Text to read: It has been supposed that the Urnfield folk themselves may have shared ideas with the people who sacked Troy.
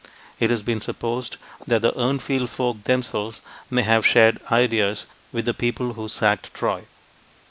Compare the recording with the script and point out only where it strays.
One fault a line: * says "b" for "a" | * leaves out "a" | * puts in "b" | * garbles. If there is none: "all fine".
all fine